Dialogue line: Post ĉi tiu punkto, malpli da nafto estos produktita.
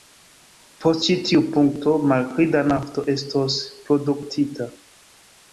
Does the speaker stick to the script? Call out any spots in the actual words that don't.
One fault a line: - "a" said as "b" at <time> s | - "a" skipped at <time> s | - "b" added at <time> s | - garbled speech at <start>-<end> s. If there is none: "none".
none